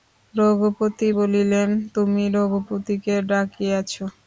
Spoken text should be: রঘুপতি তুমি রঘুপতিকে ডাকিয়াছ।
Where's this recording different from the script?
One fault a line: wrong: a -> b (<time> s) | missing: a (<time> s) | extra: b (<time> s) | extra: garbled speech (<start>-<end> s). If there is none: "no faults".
extra: বলিলেন (1.1 s)